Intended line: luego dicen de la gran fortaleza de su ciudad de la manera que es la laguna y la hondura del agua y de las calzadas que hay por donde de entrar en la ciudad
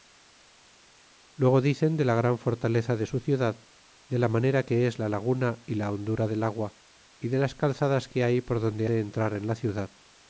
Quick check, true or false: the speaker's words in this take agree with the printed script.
true